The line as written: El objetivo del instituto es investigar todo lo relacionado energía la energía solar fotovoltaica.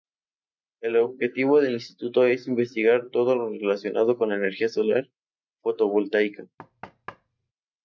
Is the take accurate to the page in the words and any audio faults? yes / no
no